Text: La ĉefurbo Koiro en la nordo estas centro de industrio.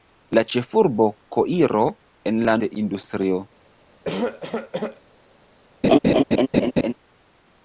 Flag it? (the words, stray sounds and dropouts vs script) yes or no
yes